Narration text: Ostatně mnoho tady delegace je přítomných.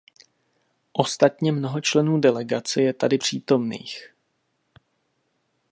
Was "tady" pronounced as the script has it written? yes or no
no